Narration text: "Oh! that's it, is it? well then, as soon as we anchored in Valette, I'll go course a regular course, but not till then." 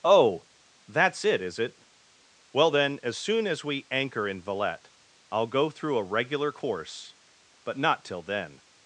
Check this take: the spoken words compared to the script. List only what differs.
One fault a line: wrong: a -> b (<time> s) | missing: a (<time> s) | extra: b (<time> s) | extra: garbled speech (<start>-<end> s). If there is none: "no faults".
wrong: anchored -> anchor (3.9 s)
wrong: course -> through (5.7 s)